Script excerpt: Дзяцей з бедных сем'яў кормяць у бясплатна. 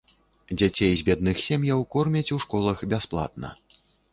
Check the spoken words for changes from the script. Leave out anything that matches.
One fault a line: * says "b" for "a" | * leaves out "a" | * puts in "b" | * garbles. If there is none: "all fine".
* puts in "школах"